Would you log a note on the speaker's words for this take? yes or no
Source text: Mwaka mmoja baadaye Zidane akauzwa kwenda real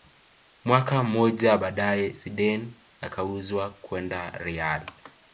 no